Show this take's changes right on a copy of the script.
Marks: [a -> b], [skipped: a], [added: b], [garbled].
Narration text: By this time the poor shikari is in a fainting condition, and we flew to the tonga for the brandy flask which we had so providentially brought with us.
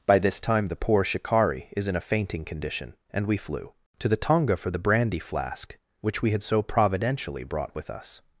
By this time the poor shikari is in a fainting condition, and we flew to the tonga for the brandy flask which we had so providentially brought with us.